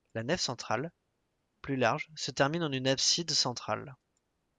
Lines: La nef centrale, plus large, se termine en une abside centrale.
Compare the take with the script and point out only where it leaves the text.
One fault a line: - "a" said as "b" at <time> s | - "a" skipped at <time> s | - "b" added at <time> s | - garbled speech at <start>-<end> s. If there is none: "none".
none